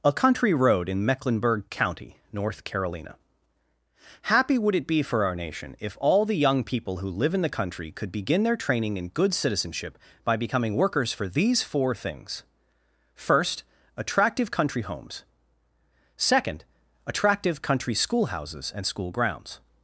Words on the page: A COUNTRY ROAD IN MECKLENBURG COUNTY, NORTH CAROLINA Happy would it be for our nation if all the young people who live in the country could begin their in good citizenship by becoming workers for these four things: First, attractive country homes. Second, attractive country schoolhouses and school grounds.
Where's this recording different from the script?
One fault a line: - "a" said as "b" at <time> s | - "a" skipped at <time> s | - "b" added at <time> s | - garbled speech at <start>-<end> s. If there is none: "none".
- "training" added at 8.6 s